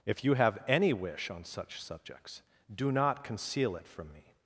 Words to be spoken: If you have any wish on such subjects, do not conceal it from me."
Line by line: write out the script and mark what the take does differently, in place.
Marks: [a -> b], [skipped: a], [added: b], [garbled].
If you have any wish on such subjects, do not conceal it from me."